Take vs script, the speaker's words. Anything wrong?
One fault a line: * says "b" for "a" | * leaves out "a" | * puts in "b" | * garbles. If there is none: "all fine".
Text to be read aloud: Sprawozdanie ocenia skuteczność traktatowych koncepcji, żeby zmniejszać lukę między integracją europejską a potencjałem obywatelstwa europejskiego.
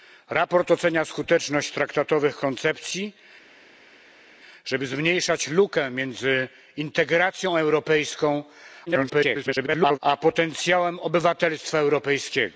* garbles